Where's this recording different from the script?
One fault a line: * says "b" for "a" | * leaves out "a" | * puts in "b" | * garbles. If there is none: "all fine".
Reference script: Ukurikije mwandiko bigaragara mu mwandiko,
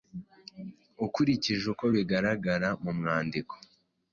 * says "uko" for "mwandiko"